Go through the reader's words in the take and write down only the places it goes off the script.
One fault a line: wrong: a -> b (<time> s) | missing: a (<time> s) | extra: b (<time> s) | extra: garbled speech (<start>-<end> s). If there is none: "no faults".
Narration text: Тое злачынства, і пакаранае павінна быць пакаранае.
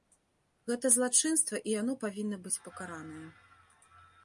wrong: Тое -> Гэта (0.7 s)
wrong: пакаранае -> яно (1.8 s)